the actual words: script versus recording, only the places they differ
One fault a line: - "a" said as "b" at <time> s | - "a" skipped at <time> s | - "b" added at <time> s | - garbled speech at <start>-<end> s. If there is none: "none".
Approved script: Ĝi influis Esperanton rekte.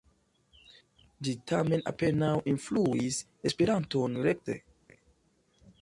- "tamen apenaŭ" added at 1.5 s